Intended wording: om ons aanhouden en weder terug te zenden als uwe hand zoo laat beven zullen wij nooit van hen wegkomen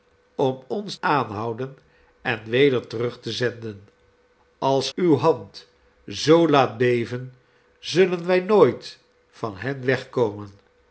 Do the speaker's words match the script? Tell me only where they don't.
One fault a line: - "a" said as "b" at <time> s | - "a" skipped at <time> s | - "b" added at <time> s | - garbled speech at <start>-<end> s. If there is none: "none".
none